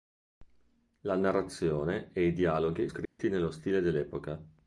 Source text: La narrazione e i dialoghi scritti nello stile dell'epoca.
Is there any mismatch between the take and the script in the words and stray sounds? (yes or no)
yes